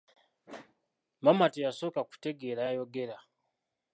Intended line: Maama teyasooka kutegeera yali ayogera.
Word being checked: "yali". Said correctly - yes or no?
no